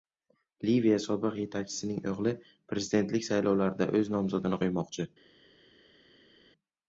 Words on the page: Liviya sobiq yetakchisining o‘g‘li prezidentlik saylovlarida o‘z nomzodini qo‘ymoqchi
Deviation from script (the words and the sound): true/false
false